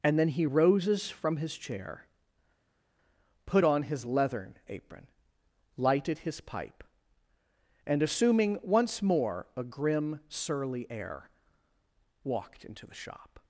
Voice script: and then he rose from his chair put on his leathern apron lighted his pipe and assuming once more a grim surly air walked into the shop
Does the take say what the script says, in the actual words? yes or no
no